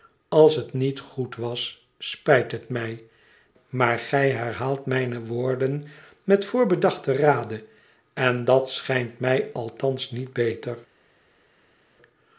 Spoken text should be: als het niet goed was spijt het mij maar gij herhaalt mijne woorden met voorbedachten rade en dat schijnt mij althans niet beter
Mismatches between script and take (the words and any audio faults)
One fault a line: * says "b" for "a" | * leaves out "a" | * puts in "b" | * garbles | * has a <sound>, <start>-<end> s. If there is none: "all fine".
all fine